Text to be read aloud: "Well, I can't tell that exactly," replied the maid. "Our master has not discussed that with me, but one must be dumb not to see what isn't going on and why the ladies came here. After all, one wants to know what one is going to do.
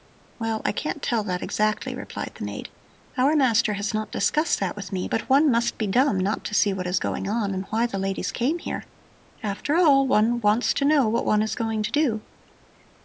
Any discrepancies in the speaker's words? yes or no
yes